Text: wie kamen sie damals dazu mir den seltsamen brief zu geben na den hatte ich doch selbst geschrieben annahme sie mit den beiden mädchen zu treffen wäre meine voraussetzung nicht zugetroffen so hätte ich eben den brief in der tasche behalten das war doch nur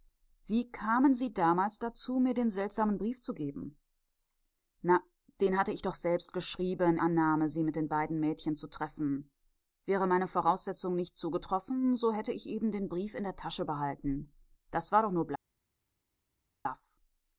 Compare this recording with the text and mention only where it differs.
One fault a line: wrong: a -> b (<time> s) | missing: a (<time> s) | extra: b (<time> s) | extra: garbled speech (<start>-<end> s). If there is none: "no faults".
no faults